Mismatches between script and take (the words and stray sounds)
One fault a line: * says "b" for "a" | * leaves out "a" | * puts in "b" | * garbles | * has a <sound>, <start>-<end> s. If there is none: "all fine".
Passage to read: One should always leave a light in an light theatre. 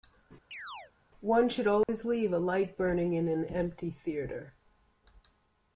* has a chirp, 0.5-0.9 s
* has a dropout, 1.8-1.9 s
* puts in "burning"
* says "empty" for "light"